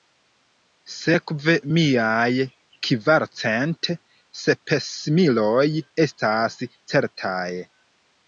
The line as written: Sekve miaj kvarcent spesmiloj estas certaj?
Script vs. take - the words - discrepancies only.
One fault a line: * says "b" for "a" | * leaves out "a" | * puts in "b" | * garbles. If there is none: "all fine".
all fine